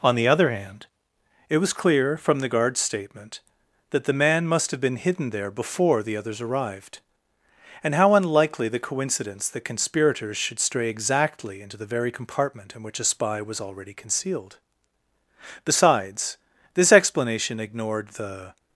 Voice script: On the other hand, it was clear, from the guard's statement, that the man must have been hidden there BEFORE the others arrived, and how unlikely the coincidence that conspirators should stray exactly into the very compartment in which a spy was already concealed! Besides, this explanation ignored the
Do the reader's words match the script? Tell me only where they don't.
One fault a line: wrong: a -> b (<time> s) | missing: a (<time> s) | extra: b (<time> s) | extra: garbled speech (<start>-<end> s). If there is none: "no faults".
no faults